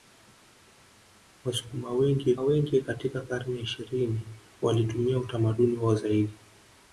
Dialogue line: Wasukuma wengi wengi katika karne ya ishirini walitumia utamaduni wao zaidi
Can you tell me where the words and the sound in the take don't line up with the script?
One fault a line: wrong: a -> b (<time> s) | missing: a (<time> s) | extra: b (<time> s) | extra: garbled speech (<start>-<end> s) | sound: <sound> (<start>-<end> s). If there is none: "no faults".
no faults